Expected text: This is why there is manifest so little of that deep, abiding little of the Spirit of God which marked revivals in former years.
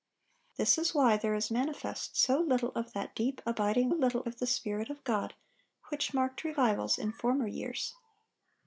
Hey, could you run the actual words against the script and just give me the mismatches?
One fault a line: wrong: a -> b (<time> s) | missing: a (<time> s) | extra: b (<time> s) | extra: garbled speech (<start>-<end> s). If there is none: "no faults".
no faults